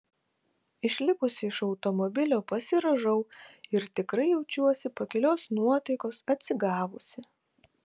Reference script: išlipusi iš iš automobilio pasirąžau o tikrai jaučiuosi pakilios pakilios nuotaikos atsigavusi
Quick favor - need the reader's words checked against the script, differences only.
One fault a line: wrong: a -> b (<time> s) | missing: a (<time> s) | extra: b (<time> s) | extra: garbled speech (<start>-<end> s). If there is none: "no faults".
missing: iš (1.6 s)
wrong: o -> ir (3.8 s)
missing: pakilios (5.5 s)